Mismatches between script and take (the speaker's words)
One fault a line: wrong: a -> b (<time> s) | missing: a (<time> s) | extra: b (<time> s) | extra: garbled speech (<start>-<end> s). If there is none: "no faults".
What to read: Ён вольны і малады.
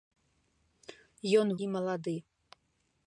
missing: вольны (1.5 s)